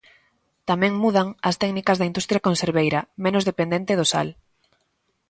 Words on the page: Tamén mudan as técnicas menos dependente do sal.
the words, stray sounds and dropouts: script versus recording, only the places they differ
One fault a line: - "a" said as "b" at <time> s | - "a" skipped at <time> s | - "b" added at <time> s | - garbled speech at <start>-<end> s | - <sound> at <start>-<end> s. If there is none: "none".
- "da industria conserveira" added at 2.0 s